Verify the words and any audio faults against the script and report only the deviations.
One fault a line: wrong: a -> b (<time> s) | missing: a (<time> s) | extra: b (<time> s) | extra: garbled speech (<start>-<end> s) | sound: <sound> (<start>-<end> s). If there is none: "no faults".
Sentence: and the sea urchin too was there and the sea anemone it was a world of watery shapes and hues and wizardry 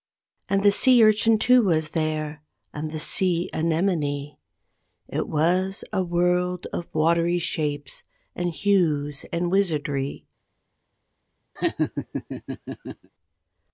sound: laugh (11.6-13.1 s)